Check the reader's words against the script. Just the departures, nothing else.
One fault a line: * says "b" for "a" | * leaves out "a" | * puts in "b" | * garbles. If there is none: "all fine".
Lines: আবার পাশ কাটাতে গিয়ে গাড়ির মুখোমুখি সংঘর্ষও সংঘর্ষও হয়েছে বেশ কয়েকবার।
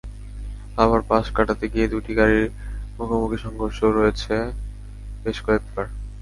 * puts in "দুটি"
* leaves out "সংঘর্ষও"